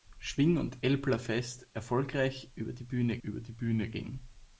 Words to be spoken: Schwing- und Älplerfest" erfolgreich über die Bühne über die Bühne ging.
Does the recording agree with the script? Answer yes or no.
yes